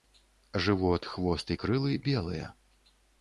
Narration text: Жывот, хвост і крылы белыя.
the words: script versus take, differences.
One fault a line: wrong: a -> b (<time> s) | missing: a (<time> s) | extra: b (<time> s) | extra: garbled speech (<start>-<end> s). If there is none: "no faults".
no faults